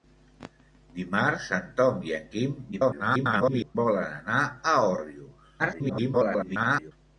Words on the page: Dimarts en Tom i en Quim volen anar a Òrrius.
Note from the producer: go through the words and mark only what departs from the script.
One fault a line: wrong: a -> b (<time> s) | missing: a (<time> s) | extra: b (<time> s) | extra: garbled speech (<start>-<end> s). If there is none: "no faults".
extra: garbled speech (2.7-3.8 s)
extra: garbled speech (5.6-6.9 s)